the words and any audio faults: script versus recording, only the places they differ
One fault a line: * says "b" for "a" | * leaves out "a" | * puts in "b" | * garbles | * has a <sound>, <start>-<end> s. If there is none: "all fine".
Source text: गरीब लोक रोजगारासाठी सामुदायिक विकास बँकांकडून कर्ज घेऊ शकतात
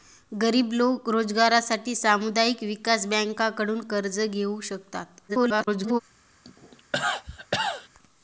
* garbles
* has a cough, 6.4-7.9 s